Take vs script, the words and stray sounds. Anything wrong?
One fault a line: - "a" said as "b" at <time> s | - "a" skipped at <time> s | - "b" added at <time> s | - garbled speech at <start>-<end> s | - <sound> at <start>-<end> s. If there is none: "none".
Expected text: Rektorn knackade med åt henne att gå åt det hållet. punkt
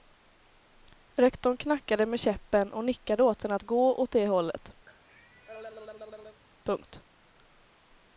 - "käppen och nickade" added at 2.2 s
- cough at 4.9-6.4 s